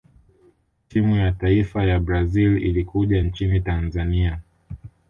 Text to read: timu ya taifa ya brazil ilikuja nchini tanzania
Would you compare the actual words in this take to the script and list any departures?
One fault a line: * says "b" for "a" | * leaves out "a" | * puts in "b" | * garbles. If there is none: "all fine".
all fine